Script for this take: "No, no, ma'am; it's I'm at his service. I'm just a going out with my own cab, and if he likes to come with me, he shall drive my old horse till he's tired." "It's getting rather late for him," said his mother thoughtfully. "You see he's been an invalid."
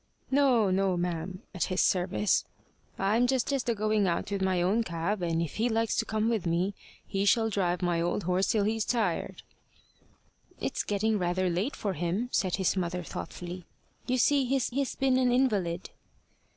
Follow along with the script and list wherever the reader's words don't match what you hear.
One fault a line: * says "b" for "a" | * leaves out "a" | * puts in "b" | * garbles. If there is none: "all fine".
* leaves out "it's I'm"
* puts in "just"
* puts in "he's"